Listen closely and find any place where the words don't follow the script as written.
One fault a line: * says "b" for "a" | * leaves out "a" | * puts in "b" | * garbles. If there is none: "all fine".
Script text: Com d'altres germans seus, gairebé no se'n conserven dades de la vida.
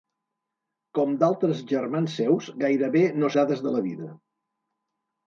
* leaves out "se'n conserven"